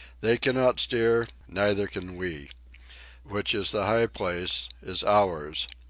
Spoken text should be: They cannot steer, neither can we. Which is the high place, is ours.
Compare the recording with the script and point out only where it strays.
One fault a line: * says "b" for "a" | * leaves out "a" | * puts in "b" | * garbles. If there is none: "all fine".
all fine